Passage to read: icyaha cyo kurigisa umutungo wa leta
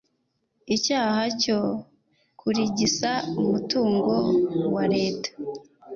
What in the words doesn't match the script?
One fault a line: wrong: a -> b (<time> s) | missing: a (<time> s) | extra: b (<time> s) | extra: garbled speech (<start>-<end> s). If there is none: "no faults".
no faults